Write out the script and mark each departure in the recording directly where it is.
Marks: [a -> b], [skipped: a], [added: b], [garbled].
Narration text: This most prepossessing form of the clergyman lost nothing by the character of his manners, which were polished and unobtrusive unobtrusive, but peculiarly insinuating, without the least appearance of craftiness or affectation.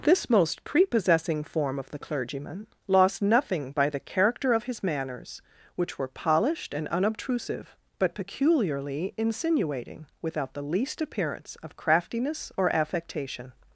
This most prepossessing form of the clergyman lost nothing by the character of his manners, which were polished and unobtrusive [skipped: unobtrusive,] but peculiarly insinuating, without the least appearance of craftiness or affectation.